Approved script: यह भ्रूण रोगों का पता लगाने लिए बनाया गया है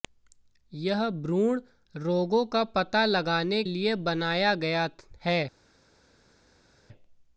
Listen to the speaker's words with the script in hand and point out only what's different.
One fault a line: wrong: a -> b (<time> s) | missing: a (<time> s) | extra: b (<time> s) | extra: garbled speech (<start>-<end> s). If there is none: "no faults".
no faults